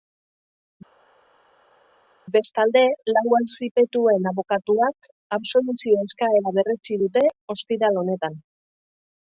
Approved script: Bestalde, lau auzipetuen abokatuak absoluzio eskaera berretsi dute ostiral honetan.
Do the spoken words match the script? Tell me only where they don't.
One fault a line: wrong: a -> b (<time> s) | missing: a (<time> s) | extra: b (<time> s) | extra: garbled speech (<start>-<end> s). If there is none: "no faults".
no faults